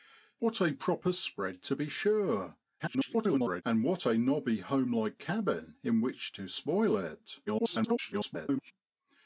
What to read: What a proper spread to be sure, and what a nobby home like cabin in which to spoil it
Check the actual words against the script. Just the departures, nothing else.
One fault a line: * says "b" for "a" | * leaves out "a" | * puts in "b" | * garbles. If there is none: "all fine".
* garbles
* garbles